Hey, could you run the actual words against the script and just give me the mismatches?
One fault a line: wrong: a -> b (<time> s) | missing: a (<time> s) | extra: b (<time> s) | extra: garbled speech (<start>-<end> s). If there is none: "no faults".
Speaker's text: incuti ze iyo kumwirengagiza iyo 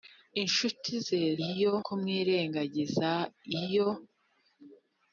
no faults